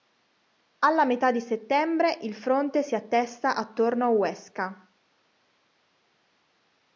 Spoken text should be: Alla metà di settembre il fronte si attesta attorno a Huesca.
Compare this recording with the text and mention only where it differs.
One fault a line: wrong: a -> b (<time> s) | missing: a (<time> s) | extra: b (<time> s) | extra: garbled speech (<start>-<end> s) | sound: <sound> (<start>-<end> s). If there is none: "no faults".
no faults